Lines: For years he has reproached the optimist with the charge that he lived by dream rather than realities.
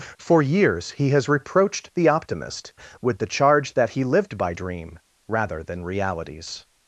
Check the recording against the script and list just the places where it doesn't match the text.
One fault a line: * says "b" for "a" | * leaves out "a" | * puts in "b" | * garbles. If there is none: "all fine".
all fine